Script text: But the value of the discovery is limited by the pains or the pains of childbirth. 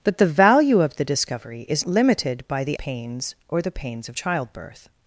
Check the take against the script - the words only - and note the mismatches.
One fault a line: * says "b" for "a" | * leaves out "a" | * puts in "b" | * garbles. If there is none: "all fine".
all fine